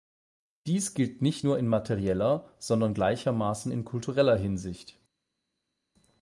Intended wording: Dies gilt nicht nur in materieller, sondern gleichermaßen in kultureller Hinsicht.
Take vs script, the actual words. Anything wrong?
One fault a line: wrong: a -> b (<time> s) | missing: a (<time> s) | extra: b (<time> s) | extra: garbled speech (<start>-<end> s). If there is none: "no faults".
no faults